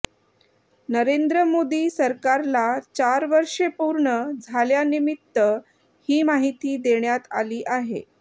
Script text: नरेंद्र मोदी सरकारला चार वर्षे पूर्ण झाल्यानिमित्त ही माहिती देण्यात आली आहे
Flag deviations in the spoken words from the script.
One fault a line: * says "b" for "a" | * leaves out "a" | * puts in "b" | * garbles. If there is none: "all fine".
all fine